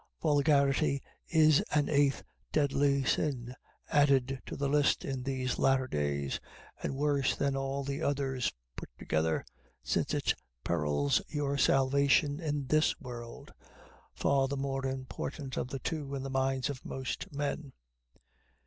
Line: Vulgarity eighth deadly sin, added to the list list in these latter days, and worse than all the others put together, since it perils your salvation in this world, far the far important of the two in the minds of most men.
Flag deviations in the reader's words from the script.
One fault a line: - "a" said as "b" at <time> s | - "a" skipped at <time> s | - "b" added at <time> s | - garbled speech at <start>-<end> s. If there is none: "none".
- "is an" added at 1.3 s
- "list" skipped at 5.0 s
- "far" said as "more" at 14.6 s